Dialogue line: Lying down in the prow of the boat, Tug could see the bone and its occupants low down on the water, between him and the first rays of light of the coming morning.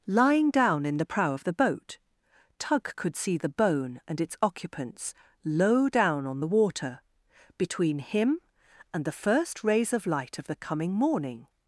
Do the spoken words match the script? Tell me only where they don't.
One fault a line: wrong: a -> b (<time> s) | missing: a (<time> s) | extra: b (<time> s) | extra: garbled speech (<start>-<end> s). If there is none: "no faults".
no faults